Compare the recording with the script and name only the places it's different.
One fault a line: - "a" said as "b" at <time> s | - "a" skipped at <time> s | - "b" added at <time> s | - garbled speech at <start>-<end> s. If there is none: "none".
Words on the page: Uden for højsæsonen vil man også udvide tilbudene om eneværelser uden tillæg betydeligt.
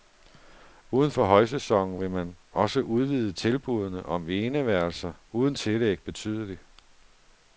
none